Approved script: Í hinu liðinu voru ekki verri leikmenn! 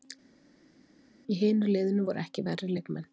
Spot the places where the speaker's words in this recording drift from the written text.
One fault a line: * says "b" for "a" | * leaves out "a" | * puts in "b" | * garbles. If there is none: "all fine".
all fine